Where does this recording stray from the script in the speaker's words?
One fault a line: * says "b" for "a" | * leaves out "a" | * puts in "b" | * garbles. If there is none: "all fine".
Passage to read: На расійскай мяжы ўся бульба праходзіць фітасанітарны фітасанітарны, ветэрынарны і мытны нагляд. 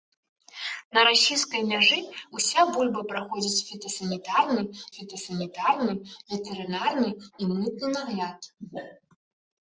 all fine